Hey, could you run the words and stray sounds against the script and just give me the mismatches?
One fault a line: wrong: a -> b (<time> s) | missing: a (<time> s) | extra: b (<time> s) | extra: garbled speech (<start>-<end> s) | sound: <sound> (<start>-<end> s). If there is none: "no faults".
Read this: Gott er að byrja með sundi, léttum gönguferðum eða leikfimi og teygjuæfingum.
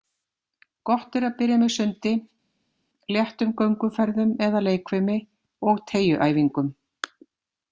no faults